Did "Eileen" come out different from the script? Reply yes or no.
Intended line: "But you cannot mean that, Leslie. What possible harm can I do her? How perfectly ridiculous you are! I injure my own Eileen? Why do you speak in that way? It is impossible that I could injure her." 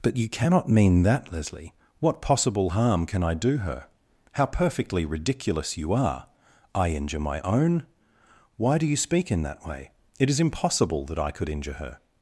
yes